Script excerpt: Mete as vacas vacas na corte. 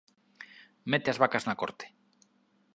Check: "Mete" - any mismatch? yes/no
no